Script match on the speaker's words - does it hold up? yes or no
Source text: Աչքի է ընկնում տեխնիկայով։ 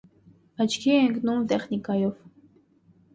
yes